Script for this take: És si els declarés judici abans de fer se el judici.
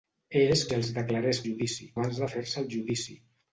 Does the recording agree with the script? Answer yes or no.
yes